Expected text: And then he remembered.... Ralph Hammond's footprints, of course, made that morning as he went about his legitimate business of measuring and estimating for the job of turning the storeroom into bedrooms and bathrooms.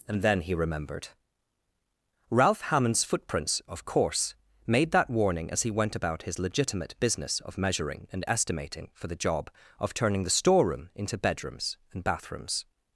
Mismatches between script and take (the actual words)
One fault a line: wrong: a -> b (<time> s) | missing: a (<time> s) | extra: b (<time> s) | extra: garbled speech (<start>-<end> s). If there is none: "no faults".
wrong: morning -> warning (5.1 s)